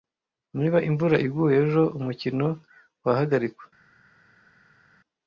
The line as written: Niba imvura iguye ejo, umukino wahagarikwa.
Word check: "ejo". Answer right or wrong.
right